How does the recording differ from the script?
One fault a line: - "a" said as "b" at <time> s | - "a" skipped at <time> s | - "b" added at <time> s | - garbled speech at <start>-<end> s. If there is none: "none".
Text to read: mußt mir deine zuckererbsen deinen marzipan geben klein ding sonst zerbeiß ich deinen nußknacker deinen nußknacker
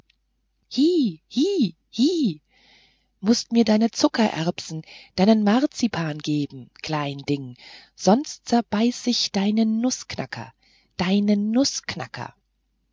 none